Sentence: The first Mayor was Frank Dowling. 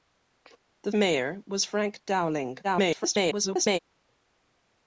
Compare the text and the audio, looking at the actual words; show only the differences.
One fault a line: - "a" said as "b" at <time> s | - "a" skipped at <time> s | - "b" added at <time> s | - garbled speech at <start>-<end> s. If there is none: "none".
- "first" skipped at 0.9 s
- garbled speech at 2.6-3.8 s